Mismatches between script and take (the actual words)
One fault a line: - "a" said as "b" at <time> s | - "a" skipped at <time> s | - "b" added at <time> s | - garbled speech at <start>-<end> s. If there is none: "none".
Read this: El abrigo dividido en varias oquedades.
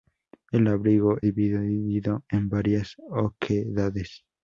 none